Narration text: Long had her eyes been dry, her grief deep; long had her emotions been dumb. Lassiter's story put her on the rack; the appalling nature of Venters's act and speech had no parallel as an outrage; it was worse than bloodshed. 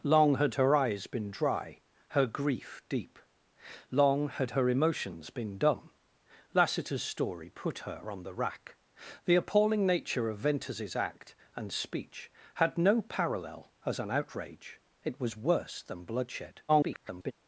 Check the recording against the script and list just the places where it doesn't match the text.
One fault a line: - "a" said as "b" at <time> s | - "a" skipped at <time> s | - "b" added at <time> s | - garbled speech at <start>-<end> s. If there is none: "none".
- garbled speech at 16.7-17.3 s